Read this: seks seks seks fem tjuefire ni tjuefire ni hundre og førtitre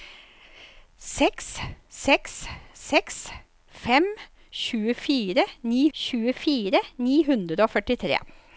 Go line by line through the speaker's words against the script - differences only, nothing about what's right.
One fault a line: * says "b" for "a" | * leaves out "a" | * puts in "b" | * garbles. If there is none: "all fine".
all fine